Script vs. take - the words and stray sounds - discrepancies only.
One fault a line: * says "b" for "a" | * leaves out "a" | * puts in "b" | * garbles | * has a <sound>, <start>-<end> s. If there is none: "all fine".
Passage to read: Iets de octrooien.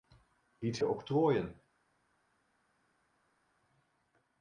all fine